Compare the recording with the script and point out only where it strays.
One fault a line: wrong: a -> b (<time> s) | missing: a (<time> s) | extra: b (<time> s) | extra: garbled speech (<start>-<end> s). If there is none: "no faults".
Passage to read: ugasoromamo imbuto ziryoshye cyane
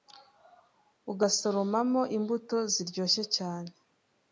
no faults